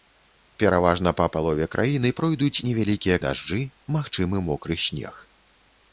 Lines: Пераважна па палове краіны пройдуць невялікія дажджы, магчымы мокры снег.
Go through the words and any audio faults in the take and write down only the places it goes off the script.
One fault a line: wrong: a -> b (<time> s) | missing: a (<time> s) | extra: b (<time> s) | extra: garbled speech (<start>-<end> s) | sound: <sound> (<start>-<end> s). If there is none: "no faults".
no faults